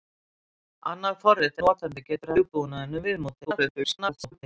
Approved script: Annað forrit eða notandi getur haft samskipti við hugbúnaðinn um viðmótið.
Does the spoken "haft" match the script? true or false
false